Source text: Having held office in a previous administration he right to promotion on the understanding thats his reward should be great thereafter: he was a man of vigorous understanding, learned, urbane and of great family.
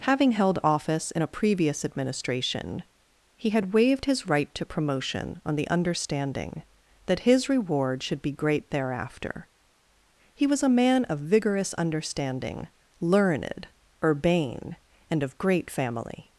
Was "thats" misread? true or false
true